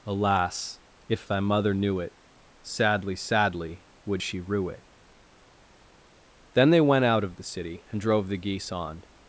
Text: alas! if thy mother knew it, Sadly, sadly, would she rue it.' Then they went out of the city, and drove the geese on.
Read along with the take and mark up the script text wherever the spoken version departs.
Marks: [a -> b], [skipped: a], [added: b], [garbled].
alas! if thy mother knew it, Sadly, sadly, would she rue it.' Then they went out of the city, and drove the geese on.